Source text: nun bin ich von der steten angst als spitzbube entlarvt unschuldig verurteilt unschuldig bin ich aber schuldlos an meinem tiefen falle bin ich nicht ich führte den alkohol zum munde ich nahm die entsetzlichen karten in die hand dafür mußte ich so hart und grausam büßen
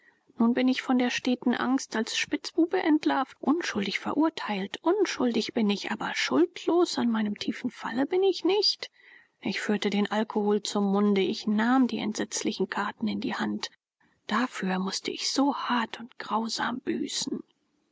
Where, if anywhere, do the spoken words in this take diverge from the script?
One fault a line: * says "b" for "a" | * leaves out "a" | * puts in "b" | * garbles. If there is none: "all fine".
all fine